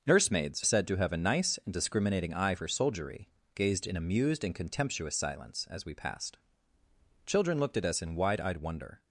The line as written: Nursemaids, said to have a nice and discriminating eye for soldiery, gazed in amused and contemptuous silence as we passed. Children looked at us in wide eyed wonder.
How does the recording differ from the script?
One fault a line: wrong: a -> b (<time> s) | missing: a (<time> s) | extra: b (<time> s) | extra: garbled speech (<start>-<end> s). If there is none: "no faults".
no faults